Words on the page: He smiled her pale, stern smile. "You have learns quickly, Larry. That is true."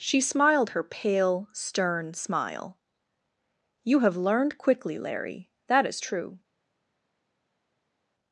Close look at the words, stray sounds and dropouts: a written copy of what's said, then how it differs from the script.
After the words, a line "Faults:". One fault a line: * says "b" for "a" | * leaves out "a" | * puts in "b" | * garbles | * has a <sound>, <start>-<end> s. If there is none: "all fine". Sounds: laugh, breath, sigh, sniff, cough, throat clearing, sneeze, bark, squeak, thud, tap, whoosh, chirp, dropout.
She smiled her pale, stern smile. "You have learned quickly, Larry. That is true."
Faults:
* says "She" for "He"
* says "learned" for "learns"